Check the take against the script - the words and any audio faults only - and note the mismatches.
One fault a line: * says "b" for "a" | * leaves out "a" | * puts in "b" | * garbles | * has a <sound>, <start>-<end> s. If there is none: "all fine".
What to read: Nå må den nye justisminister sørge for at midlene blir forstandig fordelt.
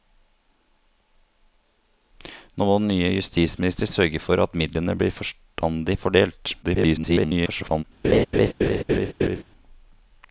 * garbles
* has a laugh, 8.0-9.4 s